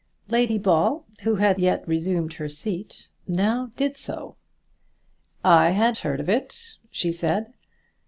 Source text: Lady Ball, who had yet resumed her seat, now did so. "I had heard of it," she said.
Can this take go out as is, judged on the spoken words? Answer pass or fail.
pass